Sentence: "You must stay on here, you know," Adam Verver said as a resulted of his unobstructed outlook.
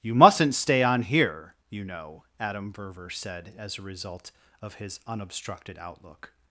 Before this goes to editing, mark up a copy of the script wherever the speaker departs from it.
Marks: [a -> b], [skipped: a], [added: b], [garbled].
"You [must -> mustn't] stay on here, you know," Adam Verver said as a [resulted -> result] of his unobstructed outlook.